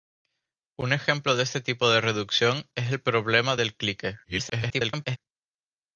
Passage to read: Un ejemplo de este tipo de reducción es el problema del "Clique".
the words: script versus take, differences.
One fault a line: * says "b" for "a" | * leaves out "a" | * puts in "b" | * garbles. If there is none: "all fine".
* garbles